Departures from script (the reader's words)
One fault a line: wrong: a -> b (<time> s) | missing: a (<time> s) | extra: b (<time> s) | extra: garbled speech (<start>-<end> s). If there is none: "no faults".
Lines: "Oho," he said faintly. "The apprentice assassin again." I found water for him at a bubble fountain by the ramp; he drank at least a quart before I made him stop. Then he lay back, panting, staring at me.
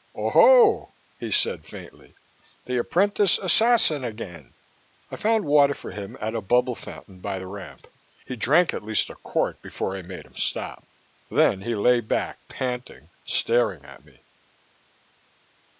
no faults